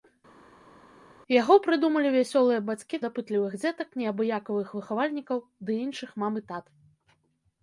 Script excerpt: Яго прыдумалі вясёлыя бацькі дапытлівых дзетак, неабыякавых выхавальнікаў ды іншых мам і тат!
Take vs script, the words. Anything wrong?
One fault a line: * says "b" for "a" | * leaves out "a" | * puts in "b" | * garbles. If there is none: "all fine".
all fine